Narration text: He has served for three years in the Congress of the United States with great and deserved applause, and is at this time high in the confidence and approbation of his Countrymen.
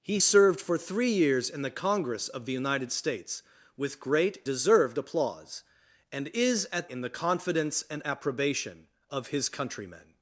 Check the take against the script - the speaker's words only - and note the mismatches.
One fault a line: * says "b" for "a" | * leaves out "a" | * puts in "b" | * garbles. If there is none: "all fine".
* leaves out "has"
* leaves out "and"
* leaves out "this time high"